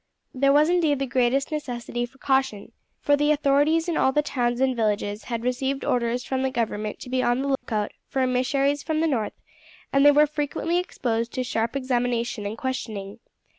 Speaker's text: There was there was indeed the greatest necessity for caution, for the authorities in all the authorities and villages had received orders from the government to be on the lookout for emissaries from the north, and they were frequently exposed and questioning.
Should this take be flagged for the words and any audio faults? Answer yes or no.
yes